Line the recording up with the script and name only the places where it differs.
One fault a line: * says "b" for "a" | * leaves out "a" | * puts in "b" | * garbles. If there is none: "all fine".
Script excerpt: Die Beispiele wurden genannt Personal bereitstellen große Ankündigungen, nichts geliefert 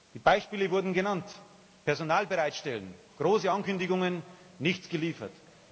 all fine